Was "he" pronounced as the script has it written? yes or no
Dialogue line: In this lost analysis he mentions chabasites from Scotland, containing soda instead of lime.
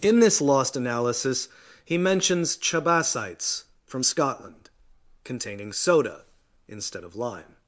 yes